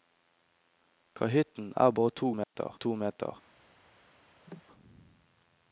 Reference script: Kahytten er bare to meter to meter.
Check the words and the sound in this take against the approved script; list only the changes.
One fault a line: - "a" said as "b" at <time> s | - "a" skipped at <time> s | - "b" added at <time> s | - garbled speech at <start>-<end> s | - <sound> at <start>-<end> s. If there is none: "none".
- dropout at 2.4-2.6 s
- cough at 4.5-4.6 s